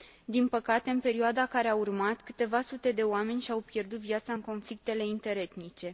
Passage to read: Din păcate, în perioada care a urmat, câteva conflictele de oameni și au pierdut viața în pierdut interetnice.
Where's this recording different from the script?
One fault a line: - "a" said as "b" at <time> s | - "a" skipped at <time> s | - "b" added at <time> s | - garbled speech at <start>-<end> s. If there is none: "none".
- "conflictele" said as "sute" at 2.6 s
- "pierdut" said as "conflictele" at 4.4 s